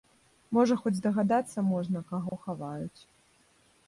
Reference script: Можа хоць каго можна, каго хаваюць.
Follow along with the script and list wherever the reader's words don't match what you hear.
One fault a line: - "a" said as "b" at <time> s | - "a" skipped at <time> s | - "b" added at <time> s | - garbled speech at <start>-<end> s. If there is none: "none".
- "каго" said as "здагадацца" at 1.0 s